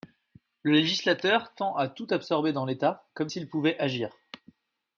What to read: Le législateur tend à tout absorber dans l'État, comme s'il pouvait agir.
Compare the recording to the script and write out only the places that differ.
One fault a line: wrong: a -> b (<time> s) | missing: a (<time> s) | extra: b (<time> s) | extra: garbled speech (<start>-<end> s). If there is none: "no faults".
no faults